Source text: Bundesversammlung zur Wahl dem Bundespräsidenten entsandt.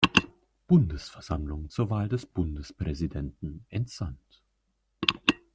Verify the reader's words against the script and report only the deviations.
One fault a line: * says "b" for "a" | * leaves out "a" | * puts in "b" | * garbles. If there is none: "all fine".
* says "des" for "dem"